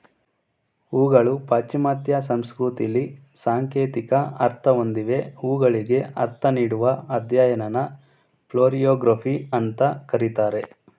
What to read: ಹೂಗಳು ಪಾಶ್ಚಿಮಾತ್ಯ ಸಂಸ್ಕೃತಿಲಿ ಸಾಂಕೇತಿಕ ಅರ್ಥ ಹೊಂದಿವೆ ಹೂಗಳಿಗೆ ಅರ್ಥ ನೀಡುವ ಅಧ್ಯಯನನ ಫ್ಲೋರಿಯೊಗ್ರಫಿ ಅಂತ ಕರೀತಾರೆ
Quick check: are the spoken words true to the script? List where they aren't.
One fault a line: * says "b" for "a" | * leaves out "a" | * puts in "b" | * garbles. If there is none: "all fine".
all fine